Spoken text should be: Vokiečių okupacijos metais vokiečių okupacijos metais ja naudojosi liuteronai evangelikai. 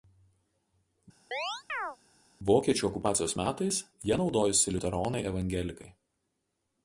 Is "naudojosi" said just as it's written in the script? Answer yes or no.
yes